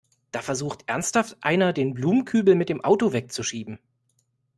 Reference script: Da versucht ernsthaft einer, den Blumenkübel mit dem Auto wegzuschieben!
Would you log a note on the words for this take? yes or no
no